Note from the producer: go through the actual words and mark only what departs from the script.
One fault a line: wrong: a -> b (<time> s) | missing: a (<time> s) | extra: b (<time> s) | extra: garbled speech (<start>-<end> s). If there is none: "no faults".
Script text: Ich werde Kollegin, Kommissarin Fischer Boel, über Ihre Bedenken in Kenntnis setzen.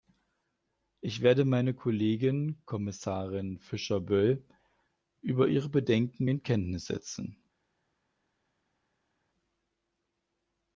extra: meine (1.4 s)